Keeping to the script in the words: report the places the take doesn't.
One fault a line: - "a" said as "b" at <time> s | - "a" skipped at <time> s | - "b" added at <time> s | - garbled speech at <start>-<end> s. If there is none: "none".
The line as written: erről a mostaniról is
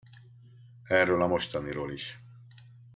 none